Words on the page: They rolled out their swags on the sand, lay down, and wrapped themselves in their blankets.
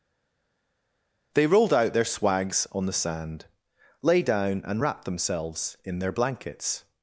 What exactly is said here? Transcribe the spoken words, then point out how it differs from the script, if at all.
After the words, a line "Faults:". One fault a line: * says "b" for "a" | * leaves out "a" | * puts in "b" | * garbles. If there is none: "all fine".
They rolled out their swags on the sand, lay down, and wrapped themselves in their blankets.
Faults:
all fine